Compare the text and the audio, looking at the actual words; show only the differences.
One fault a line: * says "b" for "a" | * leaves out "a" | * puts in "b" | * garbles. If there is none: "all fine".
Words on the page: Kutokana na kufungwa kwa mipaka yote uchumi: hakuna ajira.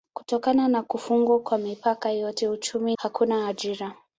all fine